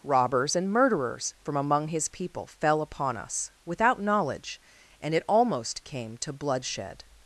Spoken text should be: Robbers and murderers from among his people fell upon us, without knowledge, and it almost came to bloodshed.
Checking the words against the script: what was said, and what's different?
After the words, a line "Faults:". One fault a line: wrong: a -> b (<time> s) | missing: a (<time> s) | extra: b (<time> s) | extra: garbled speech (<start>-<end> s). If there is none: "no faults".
Robbers and murderers from among his people fell upon us, without knowledge, and it almost came to bloodshed.
Faults:
no faults